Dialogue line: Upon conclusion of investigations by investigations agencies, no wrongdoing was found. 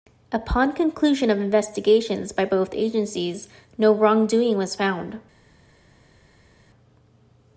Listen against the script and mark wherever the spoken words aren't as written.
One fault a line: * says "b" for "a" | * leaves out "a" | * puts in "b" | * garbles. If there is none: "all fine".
* says "both" for "investigations"